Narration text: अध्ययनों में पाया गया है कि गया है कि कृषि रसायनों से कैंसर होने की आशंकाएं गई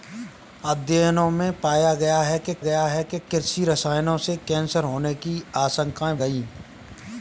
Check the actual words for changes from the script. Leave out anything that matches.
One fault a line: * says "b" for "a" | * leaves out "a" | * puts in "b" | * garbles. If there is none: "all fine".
all fine